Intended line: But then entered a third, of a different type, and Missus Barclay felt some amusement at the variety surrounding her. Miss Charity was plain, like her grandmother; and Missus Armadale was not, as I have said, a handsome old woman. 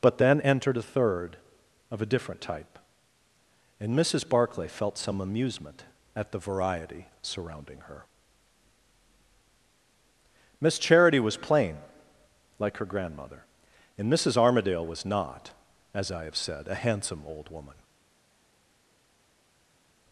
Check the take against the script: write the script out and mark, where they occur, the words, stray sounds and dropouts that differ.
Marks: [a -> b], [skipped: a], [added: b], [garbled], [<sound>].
But then entered a third, of a different type, and Missus Barclay felt some amusement at the variety surrounding her. Miss Charity was plain, like her grandmother; and Missus Armadale was not, as I have said, a handsome old woman.